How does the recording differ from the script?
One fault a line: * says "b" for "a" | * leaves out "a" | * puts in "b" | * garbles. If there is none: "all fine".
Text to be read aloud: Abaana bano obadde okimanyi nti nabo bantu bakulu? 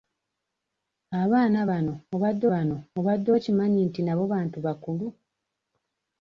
* puts in "bano obadde"